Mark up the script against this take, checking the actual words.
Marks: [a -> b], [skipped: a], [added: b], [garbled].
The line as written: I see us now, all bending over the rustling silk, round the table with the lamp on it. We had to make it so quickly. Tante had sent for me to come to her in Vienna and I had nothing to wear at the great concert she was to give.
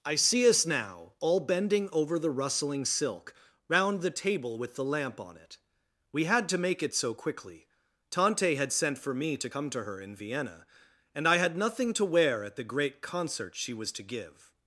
I see us now, all bending over the rustling silk, round the table with the lamp on it. We had to make it so quickly. Tante had sent for me to come to her in Vienna and I had nothing to wear at the great concert she was to give.